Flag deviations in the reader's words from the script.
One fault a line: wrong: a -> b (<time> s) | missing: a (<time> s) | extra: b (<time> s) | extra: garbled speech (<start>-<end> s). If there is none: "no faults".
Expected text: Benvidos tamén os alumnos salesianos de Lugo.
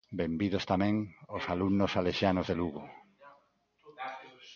no faults